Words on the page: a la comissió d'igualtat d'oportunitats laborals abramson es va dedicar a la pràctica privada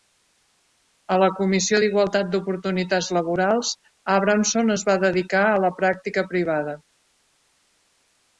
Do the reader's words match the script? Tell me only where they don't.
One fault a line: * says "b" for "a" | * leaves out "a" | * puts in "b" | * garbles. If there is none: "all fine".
all fine